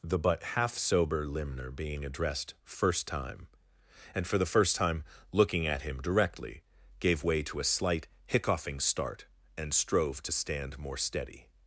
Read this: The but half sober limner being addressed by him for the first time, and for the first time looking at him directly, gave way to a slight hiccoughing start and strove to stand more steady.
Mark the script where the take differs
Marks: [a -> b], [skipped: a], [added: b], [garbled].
The but half sober limner being addressed [skipped: by him for the] first time, and for the first time looking at him directly, gave way to a slight hiccoughing start and strove to stand more steady.